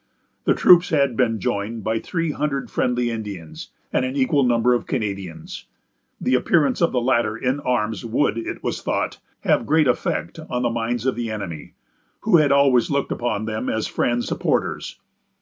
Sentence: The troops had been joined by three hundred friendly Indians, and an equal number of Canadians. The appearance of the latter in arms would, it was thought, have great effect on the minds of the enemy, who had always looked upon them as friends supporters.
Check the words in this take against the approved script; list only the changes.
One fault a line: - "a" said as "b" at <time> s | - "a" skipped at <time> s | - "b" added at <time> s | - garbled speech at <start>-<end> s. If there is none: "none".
none